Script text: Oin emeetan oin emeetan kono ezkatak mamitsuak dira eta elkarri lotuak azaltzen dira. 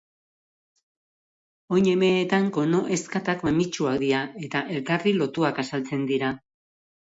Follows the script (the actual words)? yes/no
no